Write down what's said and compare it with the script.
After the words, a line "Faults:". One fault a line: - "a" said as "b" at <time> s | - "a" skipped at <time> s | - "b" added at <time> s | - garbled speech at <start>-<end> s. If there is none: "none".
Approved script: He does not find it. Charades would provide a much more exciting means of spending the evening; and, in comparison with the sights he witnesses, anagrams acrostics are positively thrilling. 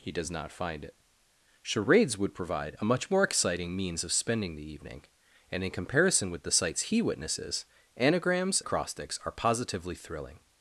He does not find it. Charades would provide a much more exciting means of spending the evening; and, in comparison with the sights he witnesses, anagrams acrostics are positively thrilling.
Faults:
none